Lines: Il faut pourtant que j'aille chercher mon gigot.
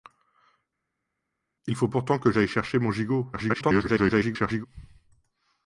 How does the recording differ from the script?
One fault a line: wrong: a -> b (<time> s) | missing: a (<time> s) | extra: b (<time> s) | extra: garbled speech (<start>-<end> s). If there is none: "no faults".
extra: garbled speech (3.3-4.7 s)